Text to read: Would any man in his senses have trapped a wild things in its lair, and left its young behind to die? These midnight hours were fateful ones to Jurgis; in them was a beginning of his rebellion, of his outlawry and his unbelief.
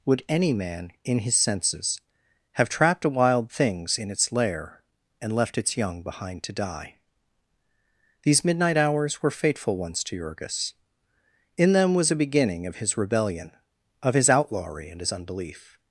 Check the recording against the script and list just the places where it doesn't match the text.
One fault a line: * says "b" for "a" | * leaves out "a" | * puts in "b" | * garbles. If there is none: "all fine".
all fine